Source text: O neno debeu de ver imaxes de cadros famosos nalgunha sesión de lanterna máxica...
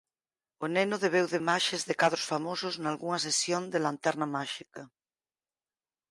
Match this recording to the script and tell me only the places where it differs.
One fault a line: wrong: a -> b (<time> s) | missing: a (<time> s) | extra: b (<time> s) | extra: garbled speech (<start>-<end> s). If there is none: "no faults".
missing: ver (1.4 s)